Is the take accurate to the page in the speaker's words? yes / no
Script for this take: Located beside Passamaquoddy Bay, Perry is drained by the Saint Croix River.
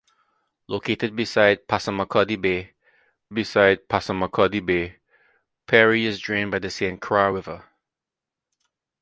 no